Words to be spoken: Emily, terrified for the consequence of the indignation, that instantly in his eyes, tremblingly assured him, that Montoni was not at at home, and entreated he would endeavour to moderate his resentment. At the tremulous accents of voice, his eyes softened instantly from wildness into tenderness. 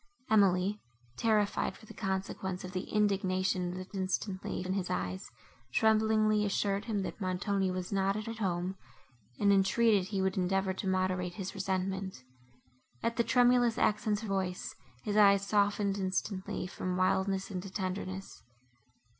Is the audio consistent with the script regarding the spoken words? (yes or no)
yes